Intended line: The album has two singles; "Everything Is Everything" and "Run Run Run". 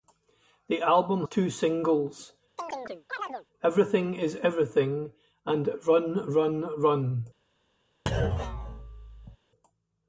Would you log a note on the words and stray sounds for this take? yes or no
yes